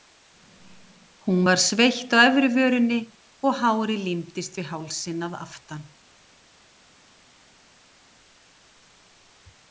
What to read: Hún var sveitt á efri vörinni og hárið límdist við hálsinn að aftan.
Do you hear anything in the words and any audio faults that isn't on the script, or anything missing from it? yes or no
no